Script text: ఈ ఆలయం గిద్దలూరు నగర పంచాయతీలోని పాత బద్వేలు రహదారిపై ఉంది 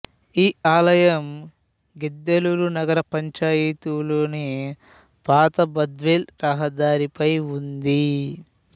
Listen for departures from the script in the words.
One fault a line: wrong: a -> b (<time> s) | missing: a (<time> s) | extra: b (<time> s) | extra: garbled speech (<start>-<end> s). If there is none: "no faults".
no faults